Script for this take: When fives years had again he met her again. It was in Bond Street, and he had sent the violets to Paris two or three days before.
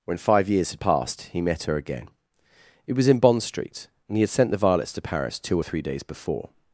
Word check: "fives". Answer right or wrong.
wrong